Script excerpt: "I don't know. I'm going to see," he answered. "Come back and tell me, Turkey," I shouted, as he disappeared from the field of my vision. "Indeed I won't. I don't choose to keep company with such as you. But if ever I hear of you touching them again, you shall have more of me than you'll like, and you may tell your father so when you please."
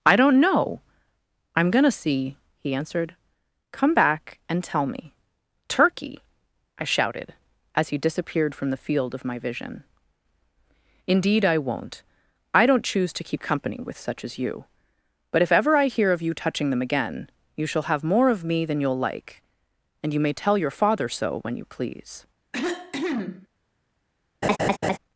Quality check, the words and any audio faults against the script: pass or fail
fail